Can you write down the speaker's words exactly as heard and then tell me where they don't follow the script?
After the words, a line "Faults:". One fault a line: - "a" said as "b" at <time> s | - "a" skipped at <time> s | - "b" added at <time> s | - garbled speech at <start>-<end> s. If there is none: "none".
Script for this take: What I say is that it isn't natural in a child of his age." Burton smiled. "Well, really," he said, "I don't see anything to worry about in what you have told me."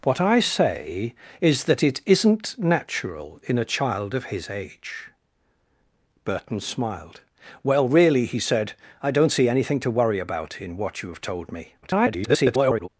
What I say is that it isn't natural in a child of his age." Burton smiled. "Well, really," he said, "I don't see anything to worry about in what you have told me." [garbled]
Faults:
- garbled speech at 11.8-12.9 s